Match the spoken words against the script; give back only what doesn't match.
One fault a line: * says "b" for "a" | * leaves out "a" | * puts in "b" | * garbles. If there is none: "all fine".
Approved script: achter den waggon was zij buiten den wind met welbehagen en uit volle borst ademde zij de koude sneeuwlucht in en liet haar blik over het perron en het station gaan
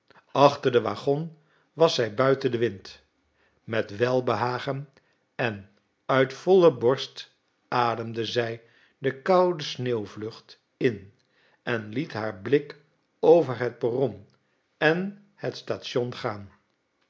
all fine